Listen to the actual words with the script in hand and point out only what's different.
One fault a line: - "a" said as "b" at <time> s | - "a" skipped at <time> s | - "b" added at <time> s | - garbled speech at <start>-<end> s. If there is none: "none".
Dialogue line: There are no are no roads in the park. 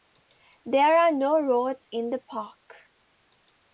- "are no" skipped at 1.4 s